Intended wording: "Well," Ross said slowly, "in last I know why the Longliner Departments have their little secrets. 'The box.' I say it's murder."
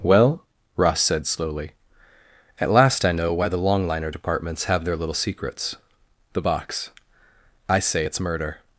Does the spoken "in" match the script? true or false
false